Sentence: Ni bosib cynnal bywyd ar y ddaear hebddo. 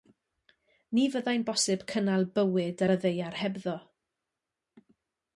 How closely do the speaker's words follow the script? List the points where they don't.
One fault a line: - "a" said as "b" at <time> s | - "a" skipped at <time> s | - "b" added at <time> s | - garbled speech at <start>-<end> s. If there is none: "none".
- "fyddai'n" added at 1.1 s